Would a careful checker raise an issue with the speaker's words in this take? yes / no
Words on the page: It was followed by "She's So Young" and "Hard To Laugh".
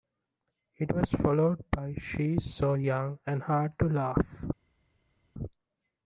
no